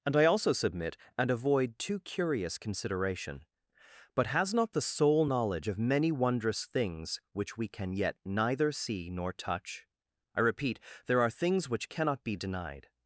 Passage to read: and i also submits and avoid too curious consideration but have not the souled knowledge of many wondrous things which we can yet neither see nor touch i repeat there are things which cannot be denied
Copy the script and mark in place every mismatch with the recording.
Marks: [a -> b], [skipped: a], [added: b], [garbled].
and i also [submits -> submit] and avoid too curious consideration but [have -> has] not the [souled -> soul] knowledge of many wondrous things which we can yet neither see nor touch i repeat there are things which cannot be denied